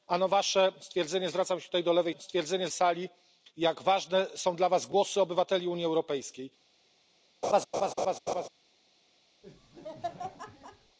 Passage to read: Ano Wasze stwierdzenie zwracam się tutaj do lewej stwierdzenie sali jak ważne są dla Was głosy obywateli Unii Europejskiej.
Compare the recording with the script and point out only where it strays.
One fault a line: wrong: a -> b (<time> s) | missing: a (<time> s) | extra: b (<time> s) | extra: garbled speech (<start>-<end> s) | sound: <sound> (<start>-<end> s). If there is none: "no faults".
sound: laugh (7.4-8.5 s)
sound: laugh (9.4-11.0 s)